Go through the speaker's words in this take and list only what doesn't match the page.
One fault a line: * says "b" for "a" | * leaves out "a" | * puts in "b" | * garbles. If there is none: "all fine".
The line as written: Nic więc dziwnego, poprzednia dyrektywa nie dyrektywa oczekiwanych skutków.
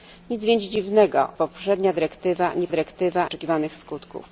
all fine